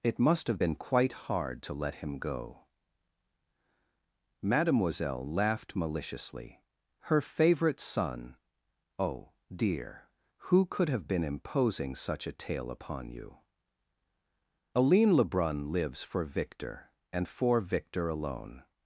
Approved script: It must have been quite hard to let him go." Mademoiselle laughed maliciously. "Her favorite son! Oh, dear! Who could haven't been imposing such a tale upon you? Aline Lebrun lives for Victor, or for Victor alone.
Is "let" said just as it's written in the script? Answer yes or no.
yes